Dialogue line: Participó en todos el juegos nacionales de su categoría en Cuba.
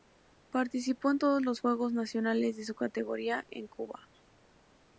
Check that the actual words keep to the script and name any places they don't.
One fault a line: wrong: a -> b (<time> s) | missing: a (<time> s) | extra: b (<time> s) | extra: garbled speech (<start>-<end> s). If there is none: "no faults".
wrong: el -> los (1.4 s)